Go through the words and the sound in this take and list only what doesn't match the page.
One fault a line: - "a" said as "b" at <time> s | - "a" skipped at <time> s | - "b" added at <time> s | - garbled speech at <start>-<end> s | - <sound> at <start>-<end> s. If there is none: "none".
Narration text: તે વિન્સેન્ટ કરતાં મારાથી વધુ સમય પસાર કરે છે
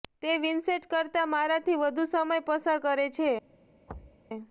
- thud at 3.9-4.2 s